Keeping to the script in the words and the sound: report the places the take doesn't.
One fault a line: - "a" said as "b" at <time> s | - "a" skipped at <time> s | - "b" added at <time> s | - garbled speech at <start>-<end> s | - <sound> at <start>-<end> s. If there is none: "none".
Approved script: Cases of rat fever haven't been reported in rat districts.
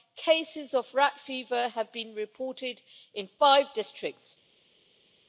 - "haven't" said as "have" at 1.7 s
- "rat" said as "five" at 3.4 s